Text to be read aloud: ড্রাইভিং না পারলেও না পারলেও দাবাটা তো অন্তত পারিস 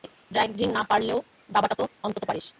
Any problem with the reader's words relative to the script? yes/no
yes